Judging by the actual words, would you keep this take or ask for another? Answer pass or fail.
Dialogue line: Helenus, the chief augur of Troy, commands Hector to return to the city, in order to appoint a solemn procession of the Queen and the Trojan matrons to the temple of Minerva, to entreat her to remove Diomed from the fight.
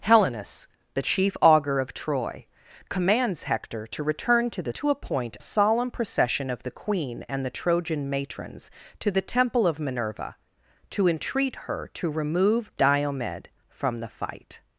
fail